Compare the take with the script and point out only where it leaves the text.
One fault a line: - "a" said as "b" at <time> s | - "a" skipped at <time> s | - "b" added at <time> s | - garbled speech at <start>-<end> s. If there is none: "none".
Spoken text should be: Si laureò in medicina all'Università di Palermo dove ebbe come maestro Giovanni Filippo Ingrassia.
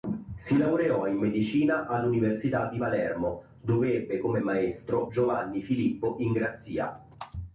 none